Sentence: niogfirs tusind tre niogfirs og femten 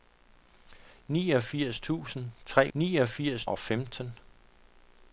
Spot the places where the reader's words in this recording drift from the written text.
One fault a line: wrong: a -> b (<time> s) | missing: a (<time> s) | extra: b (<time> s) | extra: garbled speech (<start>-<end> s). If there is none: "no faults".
no faults